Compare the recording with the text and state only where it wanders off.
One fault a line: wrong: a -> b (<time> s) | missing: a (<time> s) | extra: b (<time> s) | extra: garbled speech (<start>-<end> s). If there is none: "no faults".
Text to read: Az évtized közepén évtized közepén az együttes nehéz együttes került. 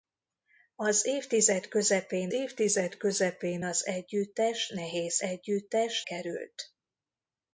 no faults